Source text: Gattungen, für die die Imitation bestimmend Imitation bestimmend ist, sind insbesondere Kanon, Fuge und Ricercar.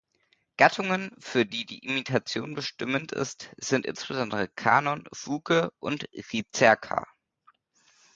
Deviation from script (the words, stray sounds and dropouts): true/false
true